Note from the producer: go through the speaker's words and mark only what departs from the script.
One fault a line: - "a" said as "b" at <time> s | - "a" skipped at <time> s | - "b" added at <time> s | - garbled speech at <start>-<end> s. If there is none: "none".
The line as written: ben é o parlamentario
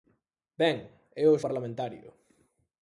none